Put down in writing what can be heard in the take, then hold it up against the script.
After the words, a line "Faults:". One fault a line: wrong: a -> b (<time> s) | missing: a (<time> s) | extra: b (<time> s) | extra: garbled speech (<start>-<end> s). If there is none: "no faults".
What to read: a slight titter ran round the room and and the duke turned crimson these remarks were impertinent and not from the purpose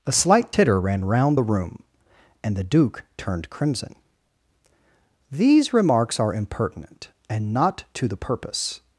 a slight titter ran round the room and the duke turned crimson these remarks are impertinent and not to the purpose
Faults:
missing: and (2.6 s)
wrong: were -> are (6.2 s)
wrong: from -> to (7.9 s)